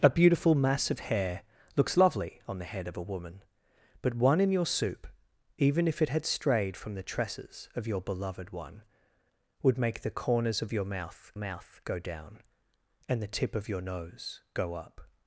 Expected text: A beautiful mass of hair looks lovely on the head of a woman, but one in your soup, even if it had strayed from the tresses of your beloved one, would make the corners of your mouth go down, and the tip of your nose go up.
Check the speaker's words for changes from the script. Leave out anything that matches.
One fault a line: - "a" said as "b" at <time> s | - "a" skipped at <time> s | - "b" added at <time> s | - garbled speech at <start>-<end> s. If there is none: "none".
- "mouth" added at 11.4 s